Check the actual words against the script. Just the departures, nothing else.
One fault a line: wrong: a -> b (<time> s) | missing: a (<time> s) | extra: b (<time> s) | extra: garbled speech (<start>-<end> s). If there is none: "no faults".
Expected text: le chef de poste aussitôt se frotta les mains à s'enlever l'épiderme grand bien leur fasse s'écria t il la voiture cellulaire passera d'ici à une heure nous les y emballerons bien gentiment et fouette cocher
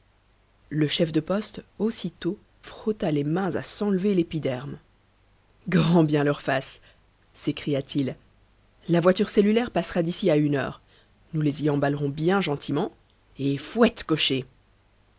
missing: se (2.4 s)